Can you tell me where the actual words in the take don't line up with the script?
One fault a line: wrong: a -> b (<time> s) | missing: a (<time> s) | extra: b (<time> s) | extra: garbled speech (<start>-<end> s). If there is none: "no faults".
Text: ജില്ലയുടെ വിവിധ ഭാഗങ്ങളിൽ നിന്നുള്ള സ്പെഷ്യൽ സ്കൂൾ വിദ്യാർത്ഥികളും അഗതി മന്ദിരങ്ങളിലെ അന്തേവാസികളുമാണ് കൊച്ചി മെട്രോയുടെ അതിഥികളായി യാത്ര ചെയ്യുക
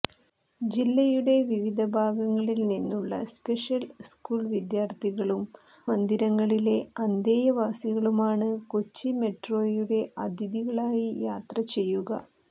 missing: അഗതി (5.4 s)